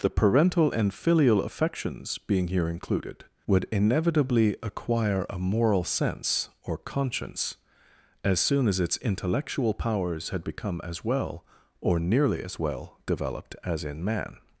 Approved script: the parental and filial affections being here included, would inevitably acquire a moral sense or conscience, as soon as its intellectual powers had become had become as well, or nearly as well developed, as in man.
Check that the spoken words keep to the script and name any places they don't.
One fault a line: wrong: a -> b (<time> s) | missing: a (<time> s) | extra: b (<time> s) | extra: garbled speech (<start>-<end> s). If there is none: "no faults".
missing: had become (10.8 s)